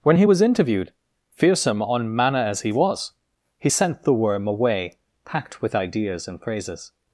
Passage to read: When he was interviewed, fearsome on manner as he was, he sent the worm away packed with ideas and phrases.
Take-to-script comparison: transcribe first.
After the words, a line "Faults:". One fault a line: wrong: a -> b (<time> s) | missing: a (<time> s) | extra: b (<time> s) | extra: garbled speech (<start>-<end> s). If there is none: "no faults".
When he was interviewed, fearsome on manner as he was, he sent the worm away packed with ideas and phrases.
Faults:
no faults